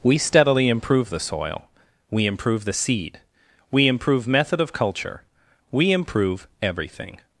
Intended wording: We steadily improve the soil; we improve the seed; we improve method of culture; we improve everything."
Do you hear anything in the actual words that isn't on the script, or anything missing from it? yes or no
no